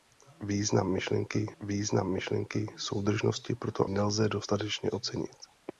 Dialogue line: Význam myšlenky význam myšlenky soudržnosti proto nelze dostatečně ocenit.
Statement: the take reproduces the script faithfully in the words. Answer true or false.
true